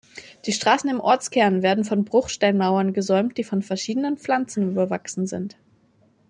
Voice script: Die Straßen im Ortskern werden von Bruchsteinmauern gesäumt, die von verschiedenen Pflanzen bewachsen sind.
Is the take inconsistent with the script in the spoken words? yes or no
no